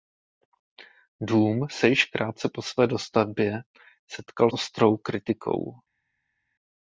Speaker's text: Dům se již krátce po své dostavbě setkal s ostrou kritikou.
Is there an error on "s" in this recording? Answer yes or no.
yes